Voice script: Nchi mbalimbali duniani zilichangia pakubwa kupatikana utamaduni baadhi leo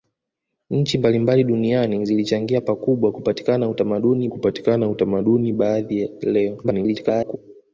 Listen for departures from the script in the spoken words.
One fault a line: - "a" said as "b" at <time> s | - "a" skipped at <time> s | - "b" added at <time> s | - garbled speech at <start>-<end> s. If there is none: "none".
- "kupatikana utamaduni" added at 4.3 s
- garbled speech at 6.6-7.4 s